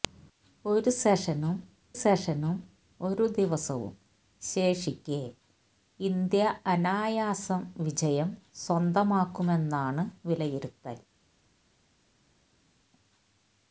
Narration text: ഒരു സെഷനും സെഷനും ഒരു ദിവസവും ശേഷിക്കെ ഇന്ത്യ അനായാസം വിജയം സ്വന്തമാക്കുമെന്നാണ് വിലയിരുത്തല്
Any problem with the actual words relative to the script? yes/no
no